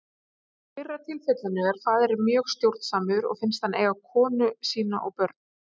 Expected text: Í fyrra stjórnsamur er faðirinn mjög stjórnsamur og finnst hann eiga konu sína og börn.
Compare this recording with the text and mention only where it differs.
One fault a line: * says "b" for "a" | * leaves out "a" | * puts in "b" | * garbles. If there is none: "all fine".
* says "tilfellinu" for "stjórnsamur"